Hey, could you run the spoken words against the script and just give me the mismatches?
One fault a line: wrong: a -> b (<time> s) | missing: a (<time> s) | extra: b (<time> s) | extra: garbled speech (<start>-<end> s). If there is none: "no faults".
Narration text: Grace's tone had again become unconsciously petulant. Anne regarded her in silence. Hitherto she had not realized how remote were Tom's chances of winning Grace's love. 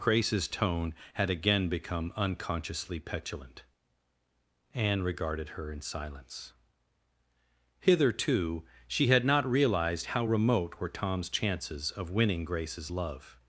no faults